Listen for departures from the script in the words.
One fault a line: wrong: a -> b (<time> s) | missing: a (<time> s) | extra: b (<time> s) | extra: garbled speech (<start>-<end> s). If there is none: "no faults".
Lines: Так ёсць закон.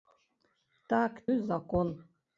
no faults